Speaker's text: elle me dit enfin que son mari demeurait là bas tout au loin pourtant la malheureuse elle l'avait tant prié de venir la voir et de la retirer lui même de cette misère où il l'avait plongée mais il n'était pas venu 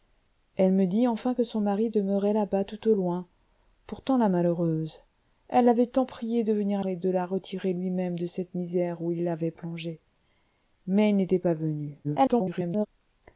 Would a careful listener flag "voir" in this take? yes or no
yes